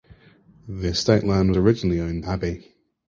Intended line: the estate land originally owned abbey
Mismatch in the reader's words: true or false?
false